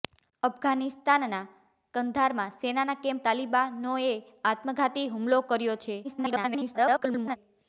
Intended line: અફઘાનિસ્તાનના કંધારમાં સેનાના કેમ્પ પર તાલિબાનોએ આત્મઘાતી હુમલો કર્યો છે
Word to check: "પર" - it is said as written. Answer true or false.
false